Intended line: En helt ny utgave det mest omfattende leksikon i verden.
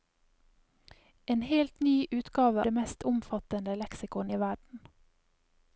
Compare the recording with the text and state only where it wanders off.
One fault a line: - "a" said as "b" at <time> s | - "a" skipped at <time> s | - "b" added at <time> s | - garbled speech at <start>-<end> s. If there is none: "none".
none